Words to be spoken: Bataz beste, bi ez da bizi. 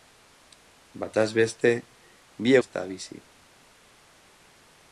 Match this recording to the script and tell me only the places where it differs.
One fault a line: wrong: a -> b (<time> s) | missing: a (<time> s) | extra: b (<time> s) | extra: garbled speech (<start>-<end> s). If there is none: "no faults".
no faults